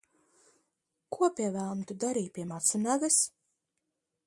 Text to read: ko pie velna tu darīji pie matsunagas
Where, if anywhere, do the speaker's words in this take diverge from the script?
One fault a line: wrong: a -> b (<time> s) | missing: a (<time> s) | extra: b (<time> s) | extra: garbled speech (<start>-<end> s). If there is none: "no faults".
no faults